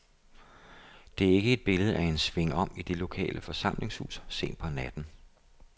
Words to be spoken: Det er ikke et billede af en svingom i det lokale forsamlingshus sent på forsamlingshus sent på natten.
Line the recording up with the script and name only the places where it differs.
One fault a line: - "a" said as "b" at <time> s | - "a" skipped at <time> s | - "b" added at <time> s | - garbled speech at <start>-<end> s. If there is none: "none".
- "forsamlingshus sent på" skipped at 4.7 s